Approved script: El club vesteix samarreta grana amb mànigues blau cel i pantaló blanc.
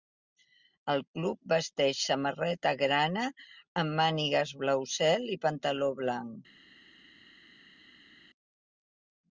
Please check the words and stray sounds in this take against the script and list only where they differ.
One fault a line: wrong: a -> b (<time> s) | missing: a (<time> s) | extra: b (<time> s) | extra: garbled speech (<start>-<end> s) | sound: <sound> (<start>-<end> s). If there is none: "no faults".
no faults